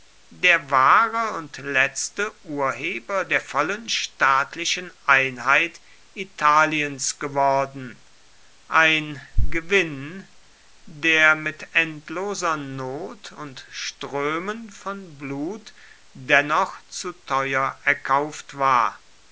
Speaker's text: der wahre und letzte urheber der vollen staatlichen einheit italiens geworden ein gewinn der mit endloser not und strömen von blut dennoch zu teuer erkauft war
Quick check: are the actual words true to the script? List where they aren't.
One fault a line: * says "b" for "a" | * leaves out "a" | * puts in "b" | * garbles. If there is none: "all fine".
all fine